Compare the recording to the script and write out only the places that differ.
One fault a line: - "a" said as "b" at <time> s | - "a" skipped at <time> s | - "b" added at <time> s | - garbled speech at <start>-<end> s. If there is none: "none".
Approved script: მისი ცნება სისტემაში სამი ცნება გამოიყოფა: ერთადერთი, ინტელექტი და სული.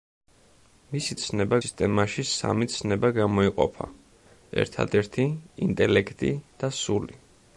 none